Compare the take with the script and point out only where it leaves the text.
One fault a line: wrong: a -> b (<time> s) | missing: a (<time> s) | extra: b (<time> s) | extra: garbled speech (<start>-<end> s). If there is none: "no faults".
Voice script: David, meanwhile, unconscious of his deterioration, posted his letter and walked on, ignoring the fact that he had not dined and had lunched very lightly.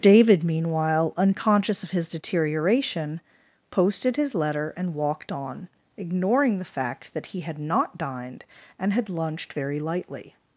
no faults